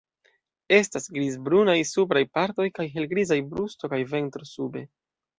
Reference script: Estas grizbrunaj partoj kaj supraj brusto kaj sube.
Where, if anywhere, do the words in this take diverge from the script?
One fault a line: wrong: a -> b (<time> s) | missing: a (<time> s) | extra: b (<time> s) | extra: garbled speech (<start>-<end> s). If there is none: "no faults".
extra: supraj (1.9 s)
wrong: supraj -> helgrizaj (3.0 s)
extra: ventro (4.2 s)